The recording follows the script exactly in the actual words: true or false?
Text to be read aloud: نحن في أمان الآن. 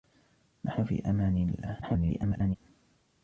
false